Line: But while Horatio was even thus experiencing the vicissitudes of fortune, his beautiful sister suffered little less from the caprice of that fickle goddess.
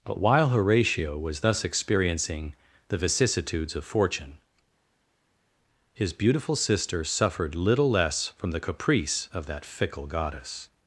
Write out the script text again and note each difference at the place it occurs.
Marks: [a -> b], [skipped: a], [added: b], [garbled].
But while Horatio was [skipped: even] thus experiencing the vicissitudes of fortune, his beautiful sister suffered little less from the caprice of that fickle goddess.